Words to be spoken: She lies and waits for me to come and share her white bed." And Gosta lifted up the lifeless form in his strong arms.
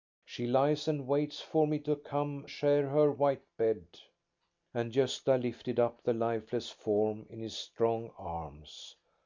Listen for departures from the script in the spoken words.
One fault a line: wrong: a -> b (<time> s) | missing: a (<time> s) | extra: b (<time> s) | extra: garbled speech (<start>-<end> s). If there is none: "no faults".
missing: and (2.5 s)